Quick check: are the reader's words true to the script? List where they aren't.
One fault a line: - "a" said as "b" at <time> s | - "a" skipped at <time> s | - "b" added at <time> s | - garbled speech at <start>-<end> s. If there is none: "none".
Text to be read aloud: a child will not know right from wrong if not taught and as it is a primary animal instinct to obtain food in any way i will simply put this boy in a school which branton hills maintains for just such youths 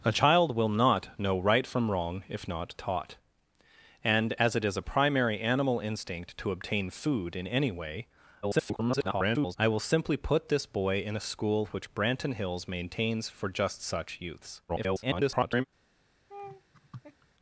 - garbled speech at 8.4-9.6 s
- garbled speech at 14.7-15.7 s